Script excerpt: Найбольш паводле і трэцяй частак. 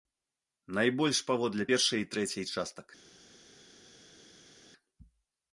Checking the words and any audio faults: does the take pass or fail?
fail